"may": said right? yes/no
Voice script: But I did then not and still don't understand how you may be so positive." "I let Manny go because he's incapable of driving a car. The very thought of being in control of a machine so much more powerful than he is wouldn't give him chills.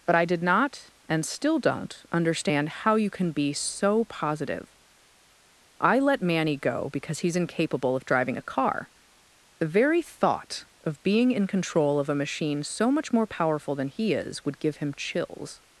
no